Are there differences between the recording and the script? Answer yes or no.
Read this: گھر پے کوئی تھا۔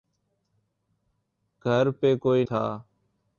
no